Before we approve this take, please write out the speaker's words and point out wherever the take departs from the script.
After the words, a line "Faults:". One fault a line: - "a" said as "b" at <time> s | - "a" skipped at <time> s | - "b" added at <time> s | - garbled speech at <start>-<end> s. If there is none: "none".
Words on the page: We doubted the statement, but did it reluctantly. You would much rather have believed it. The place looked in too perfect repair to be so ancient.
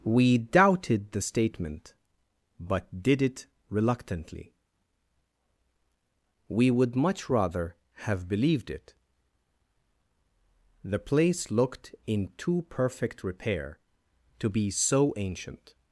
We doubted the statement, but did it reluctantly. We would much rather have believed it. The place looked in too perfect repair to be so ancient.
Faults:
- "You" said as "We" at 6.5 s